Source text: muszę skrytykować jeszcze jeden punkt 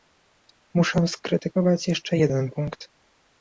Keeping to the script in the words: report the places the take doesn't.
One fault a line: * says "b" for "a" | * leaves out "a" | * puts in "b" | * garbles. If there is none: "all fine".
all fine